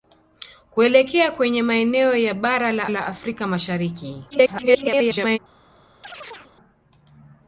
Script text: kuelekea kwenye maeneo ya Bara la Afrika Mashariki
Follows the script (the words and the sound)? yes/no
no